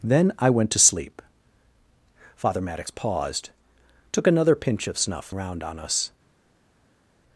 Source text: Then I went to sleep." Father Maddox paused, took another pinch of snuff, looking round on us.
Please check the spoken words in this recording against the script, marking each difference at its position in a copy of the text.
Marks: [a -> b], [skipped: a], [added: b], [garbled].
Then I went to sleep." Father Maddox paused, took another pinch of snuff, [skipped: looking] round on us.